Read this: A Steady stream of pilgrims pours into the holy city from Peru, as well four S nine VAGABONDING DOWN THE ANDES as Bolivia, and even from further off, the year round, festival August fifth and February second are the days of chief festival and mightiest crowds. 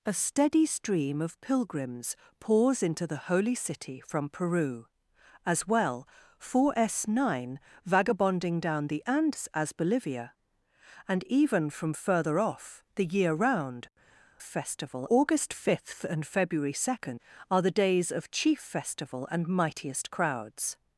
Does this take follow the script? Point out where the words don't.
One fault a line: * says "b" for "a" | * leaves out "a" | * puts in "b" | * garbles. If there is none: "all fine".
all fine